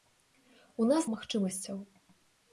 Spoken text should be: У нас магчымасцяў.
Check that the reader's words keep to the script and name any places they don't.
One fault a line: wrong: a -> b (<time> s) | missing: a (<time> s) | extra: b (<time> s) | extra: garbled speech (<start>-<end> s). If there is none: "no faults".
no faults